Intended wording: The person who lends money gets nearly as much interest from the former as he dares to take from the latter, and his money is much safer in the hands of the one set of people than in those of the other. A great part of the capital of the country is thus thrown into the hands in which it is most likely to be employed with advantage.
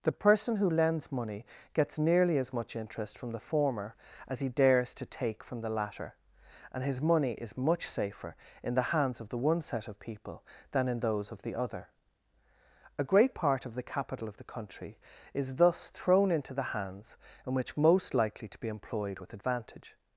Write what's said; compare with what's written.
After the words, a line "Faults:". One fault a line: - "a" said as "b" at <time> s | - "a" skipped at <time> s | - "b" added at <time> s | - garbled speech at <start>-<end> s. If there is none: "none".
The person who lends money gets nearly as much interest from the former as he dares to take from the latter, and his money is much safer in the hands of the one set of people than in those of the other. A great part of the capital of the country is thus thrown into the hands in which most likely to be employed with advantage.
Faults:
- "it is" skipped at 17.8 s